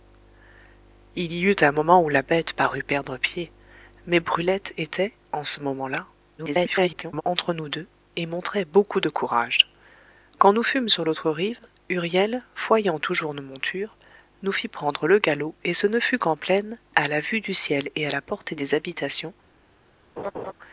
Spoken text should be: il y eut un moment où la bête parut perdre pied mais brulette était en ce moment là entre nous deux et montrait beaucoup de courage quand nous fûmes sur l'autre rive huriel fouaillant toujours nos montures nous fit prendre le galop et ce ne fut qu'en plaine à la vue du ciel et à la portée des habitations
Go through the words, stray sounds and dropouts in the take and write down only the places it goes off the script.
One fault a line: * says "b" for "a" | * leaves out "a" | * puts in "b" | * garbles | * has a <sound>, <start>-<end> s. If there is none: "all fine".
* garbles
* has a laugh, 20.2-20.5 s